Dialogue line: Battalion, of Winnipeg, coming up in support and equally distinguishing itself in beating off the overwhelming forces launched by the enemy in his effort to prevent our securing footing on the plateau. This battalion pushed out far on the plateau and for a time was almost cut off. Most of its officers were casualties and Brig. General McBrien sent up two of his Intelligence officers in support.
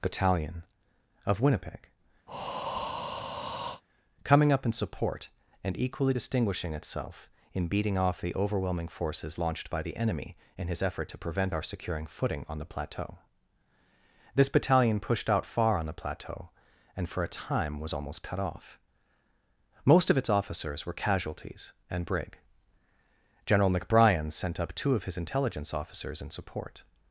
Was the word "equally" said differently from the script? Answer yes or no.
no